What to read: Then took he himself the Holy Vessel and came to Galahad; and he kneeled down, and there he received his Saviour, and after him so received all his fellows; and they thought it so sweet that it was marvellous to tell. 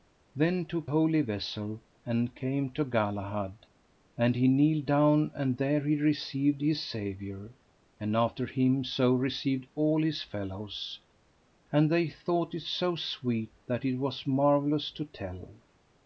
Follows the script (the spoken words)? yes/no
no